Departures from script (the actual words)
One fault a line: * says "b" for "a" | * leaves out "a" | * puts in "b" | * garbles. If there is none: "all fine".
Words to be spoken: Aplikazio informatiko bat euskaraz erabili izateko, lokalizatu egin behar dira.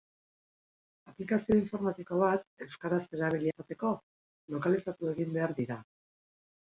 all fine